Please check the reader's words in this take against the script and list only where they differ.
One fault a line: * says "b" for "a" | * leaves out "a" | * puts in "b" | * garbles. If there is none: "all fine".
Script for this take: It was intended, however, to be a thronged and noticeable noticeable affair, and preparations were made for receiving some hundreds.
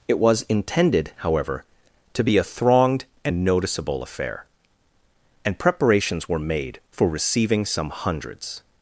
* leaves out "noticeable"